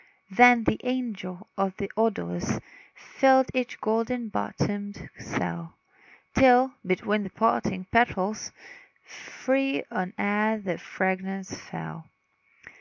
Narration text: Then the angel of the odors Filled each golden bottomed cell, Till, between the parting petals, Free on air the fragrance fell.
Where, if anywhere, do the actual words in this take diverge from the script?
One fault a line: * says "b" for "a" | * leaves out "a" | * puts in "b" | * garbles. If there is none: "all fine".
all fine